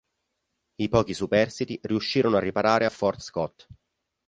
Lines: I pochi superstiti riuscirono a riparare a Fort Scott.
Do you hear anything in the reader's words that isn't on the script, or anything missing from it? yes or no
no